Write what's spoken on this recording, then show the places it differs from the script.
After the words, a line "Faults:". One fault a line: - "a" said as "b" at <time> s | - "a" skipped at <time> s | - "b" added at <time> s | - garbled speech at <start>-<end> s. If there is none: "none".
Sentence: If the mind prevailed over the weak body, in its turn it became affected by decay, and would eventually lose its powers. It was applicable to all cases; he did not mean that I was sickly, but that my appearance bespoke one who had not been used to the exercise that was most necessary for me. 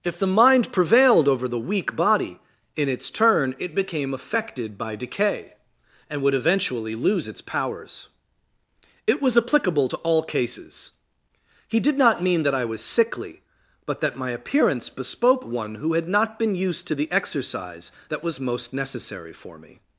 If the mind prevailed over the weak body, in its turn it became affected by decay, and would eventually lose its powers. It was applicable to all cases; he did not mean that I was sickly, but that my appearance bespoke one who had not been used to the exercise that was most necessary for me.
Faults:
none